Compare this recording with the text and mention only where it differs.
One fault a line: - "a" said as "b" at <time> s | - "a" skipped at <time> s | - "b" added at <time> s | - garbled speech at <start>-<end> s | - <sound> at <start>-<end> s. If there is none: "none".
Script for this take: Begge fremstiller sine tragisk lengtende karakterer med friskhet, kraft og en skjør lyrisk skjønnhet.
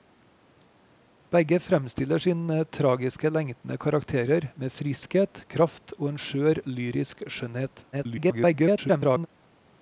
- garbled speech at 7.9-9.3 s